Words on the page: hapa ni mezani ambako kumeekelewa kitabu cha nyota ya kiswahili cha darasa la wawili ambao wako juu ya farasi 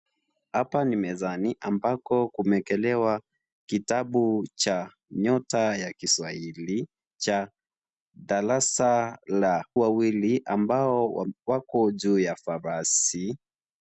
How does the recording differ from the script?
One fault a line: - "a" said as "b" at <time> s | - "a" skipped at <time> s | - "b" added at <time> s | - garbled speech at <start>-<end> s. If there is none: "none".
none